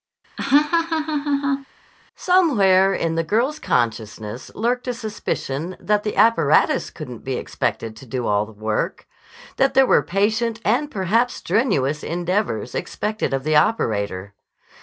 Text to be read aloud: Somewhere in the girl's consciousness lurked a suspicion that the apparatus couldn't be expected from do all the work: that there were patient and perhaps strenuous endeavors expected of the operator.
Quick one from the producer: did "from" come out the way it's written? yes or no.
no